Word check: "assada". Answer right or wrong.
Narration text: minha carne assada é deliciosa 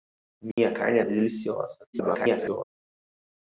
wrong